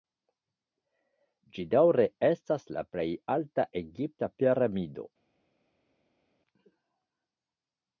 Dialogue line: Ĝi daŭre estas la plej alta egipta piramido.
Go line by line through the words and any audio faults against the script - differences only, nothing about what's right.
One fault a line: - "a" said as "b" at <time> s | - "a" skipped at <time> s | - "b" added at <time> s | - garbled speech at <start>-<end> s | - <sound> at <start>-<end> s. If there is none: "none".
none